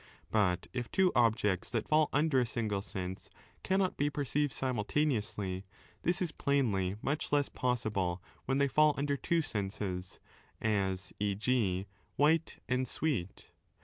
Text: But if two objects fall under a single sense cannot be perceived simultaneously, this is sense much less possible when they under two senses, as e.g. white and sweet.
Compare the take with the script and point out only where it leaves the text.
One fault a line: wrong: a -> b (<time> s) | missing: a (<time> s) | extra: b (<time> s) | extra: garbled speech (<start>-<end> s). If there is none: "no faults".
extra: that (1.7 s)
wrong: sense -> plainly (6.3 s)
extra: fall (8.7 s)